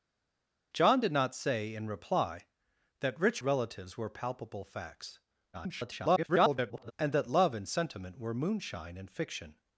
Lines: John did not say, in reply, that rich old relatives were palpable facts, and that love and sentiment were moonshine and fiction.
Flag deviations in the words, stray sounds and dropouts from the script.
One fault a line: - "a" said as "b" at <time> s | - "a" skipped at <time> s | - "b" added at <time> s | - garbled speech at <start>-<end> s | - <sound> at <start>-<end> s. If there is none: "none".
- "old" skipped at 3.4 s
- garbled speech at 5.5-6.9 s